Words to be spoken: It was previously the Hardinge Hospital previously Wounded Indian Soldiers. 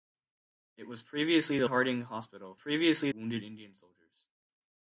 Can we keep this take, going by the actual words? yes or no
yes